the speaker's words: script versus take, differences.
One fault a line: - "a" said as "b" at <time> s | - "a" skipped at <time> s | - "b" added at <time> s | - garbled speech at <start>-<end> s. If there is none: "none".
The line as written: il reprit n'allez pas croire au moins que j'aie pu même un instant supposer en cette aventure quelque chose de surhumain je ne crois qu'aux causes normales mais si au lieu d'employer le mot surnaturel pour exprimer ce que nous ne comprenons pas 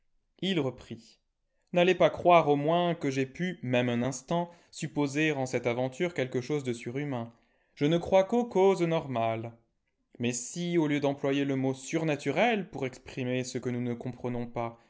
none